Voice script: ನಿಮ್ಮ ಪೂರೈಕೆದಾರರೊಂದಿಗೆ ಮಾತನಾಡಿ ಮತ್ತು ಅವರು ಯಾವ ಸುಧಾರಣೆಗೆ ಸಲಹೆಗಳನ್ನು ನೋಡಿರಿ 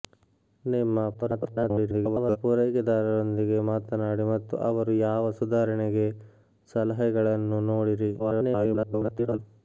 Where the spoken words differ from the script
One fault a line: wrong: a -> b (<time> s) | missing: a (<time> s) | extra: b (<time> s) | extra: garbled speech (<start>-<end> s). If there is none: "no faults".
extra: garbled speech (1.1-2.4 s)
extra: garbled speech (8.2-9.4 s)